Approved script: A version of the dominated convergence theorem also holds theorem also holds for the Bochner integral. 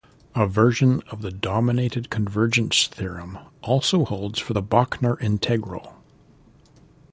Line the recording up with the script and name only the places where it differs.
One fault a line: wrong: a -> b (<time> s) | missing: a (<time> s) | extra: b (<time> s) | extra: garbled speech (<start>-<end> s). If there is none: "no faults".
missing: theorem also holds (4.4 s)